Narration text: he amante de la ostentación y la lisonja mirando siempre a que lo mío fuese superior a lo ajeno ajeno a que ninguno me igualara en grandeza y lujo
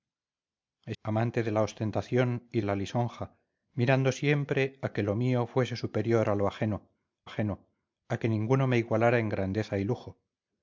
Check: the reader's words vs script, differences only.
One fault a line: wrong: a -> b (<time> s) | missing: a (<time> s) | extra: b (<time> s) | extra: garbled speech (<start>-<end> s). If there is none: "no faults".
no faults